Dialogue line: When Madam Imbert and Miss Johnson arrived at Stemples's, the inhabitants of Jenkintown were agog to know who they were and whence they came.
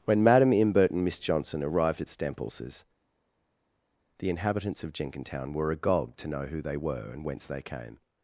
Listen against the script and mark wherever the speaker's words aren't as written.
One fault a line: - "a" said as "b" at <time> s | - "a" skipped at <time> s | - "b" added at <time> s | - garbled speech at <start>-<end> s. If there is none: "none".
none